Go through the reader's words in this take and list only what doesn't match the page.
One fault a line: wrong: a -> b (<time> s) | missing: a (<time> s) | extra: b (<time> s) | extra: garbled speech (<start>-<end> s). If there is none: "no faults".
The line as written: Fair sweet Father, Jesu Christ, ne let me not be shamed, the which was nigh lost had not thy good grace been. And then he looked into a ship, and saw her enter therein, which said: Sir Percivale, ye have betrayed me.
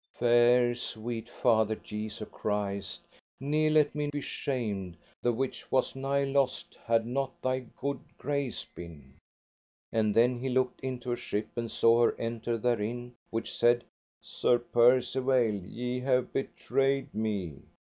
missing: not (4.1 s)